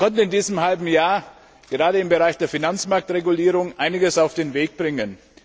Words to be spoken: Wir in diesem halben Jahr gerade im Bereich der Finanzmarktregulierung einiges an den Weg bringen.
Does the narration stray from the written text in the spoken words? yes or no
yes